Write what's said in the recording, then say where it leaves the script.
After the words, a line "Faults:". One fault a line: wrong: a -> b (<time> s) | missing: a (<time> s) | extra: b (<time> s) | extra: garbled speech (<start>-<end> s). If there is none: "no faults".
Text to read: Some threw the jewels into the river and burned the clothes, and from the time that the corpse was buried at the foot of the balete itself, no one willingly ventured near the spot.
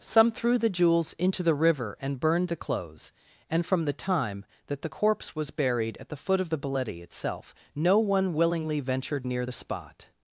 Some threw the jewels into the river and burned the clothes, and from the time that the corpse was buried at the foot of the balete itself, no one willingly ventured near the spot.
Faults:
no faults